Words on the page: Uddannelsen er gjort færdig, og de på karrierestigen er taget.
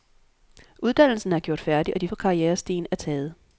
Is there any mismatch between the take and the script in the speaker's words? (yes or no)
no